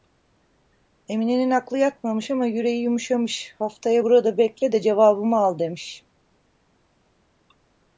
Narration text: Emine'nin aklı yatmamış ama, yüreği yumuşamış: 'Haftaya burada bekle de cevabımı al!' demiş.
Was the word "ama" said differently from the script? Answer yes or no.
no